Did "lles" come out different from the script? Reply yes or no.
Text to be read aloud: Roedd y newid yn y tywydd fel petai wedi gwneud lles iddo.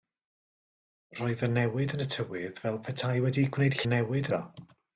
yes